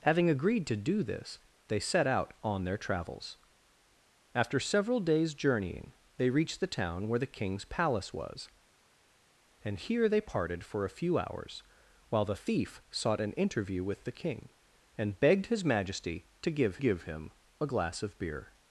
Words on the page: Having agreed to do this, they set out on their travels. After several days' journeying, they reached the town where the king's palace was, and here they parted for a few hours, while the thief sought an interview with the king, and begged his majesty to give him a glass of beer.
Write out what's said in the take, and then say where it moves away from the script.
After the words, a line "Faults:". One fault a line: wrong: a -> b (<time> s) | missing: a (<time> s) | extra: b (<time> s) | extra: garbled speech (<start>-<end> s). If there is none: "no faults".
Having agreed to do this, they set out on their travels. After several days' journeying, they reached the town where the king's palace was, and here they parted for a few hours, while the thief sought an interview with the king, and begged his majesty to give give him a glass of beer.
Faults:
extra: give (16.8 s)